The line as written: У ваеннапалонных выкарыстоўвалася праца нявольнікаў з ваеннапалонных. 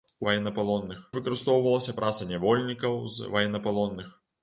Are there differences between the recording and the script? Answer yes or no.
no